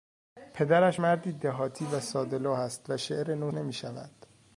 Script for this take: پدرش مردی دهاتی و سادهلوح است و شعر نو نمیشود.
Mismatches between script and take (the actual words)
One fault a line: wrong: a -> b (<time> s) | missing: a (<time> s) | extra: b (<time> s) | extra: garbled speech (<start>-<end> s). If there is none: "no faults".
no faults